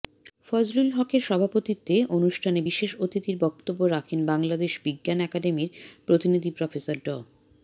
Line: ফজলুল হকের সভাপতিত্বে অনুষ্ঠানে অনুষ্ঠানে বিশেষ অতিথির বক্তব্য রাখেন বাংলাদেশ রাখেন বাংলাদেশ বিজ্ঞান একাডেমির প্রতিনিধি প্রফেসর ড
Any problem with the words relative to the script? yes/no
yes